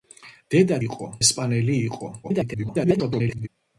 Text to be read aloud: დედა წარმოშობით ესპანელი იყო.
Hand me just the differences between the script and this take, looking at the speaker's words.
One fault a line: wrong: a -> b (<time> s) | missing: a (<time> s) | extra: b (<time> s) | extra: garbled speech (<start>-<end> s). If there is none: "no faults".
wrong: წარმოშობით -> იყო (0.9 s)
extra: garbled speech (2.2-3.5 s)